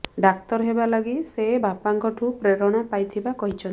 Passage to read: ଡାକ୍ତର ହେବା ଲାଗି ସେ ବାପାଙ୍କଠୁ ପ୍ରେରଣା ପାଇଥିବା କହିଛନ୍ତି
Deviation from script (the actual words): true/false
false